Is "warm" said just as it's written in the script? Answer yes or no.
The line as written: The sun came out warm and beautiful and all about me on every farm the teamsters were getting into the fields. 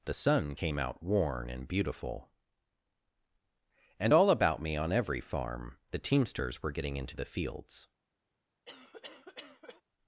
no